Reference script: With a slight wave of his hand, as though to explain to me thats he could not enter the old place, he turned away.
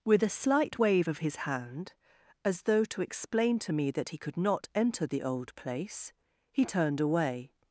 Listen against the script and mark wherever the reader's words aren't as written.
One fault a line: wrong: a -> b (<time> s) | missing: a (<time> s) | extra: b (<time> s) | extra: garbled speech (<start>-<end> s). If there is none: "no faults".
wrong: thats -> that (3.9 s)